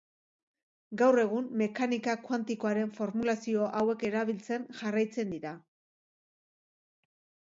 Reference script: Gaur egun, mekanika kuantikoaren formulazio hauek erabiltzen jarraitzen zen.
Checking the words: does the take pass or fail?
fail